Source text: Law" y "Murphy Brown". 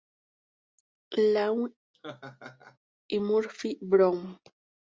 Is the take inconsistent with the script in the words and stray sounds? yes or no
yes